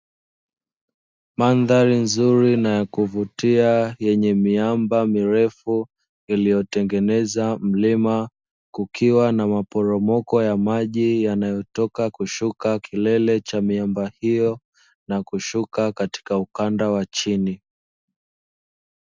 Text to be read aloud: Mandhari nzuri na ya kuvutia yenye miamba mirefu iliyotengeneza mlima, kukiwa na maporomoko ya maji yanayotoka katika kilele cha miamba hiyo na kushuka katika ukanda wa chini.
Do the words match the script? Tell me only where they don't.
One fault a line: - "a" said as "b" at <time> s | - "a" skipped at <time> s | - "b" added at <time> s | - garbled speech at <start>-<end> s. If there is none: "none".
- "katika" said as "kushuka" at 12.1 s